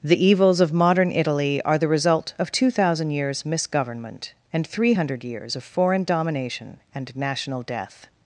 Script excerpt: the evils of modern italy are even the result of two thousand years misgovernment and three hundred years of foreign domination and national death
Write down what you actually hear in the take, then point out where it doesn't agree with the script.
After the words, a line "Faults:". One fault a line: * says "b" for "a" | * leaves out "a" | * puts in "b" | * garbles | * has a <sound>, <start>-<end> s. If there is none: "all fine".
the evils of modern italy are the result of two thousand years misgovernment and three hundred years of foreign domination and national death
Faults:
* leaves out "even"